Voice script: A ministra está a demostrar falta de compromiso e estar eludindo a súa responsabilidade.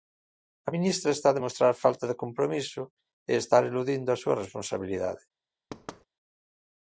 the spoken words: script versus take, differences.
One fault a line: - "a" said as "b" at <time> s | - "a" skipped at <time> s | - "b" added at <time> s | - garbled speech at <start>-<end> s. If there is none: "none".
none